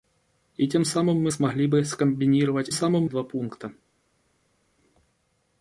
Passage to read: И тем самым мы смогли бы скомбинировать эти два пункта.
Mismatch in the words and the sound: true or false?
true